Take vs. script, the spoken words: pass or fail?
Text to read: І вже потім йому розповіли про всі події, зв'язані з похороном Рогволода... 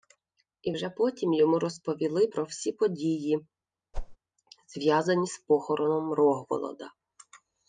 pass